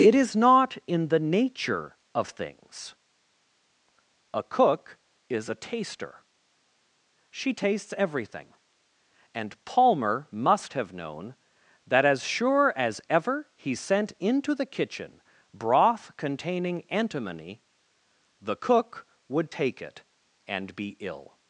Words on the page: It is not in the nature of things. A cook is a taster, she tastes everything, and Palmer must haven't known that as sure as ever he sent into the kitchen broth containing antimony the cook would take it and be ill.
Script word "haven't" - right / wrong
wrong